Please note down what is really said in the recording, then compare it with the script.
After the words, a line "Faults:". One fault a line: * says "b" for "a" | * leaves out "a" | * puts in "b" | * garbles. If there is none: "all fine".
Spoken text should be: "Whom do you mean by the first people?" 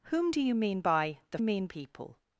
"Whom do you mean by the mean people?"
Faults:
* says "mean" for "first"